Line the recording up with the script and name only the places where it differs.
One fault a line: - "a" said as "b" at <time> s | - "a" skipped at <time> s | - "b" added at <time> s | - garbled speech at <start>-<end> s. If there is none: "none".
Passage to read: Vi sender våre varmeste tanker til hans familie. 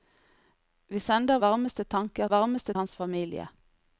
- "våre" skipped at 1.4 s
- "til" said as "varmeste" at 2.3 s